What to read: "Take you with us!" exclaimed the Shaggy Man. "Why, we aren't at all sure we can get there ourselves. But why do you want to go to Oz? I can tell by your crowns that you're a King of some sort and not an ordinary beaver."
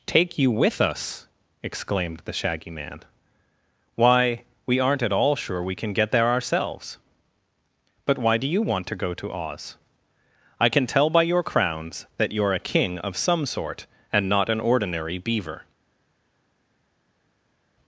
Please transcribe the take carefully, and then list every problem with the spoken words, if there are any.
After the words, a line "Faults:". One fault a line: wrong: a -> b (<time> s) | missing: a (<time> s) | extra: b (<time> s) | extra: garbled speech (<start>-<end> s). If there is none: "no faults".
"Take you with us!" exclaimed the Shaggy Man. "Why, we aren't at all sure we can get there ourselves. But why do you want to go to Oz? I can tell by your crowns that you're a King of some sort and not an ordinary beaver."
Faults:
no faults